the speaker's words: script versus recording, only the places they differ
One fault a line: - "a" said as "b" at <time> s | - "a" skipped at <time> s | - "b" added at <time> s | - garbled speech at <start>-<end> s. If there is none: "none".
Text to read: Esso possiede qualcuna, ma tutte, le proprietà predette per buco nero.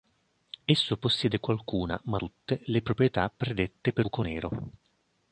none